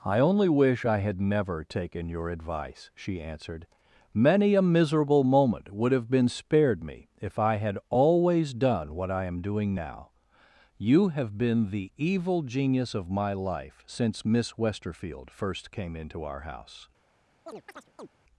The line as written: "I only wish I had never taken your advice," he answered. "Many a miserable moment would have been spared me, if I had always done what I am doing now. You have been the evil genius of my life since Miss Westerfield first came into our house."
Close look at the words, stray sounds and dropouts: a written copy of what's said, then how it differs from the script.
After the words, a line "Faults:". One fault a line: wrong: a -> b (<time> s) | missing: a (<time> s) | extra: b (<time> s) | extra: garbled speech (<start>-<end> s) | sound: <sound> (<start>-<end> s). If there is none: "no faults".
"I only wish I had never taken your advice," she answered. "Many a miserable moment would have been spared me, if I had always done what I am doing now. You have been the evil genius of my life since Miss Westerfield first came into our house."
Faults:
wrong: he -> she (3.0 s)
sound: chirp (17.5-18.1 s)